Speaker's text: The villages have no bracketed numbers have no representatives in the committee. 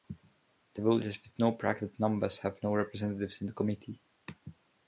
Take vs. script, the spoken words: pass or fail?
fail